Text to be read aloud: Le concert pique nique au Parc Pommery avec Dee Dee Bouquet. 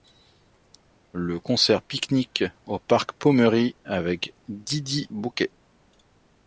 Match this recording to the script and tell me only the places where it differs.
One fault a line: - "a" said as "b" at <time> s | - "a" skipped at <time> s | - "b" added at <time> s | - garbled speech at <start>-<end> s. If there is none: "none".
none